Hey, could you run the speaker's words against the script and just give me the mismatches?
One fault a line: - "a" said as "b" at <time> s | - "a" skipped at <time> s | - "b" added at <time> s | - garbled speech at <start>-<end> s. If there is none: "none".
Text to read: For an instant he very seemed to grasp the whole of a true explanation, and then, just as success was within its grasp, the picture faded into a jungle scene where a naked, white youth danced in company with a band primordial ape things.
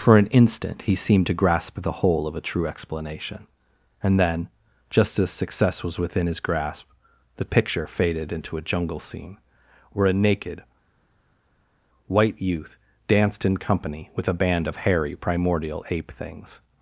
- "very" skipped at 0.9 s
- "its" said as "his" at 6.2 s
- "of hairy" added at 14.7 s